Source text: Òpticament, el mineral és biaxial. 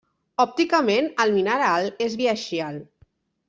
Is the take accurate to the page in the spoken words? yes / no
yes